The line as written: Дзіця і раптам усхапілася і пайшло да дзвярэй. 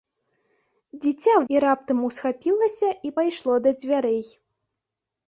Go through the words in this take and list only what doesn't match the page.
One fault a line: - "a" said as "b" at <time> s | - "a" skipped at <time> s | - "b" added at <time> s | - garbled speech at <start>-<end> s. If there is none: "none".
none